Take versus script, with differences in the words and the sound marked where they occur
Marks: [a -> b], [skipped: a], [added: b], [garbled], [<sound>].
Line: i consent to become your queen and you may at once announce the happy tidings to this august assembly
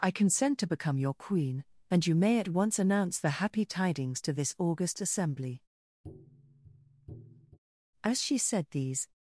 i consent to become your queen and you may at once announce the happy tidings to this august assembly [tap] [added: as she said these]